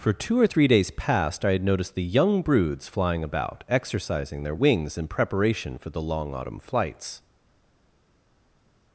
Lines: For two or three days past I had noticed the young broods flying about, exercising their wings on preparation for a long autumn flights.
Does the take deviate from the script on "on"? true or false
true